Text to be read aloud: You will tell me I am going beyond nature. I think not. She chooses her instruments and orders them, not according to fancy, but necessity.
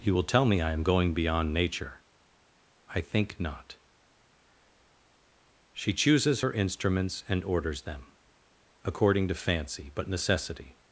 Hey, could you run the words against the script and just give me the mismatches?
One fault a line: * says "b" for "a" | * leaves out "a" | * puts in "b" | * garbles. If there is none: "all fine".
* leaves out "not"